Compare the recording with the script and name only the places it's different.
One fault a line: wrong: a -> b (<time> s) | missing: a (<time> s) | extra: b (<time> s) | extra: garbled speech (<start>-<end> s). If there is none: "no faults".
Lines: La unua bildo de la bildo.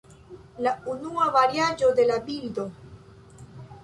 wrong: bildo -> variaĵo (1.4 s)